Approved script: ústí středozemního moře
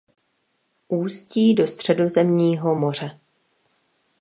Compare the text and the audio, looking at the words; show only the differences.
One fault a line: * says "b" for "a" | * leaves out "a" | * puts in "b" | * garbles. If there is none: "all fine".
* puts in "do"